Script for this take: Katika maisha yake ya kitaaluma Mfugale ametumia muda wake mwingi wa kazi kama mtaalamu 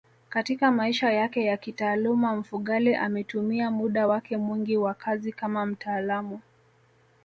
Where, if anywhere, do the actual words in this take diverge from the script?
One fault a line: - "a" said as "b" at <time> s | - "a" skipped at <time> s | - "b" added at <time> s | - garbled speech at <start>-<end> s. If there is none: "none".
none